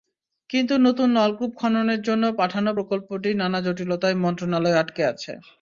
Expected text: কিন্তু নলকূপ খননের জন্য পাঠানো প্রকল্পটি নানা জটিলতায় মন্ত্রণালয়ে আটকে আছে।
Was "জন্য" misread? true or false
false